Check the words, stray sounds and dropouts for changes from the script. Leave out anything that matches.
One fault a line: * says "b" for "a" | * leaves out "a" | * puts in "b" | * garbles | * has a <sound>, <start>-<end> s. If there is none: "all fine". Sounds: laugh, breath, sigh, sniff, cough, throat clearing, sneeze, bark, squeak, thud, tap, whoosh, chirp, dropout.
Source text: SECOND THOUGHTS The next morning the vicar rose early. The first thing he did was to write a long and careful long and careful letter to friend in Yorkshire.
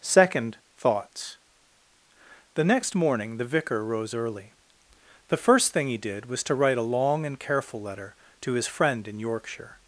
* leaves out "long and careful"
* puts in "his"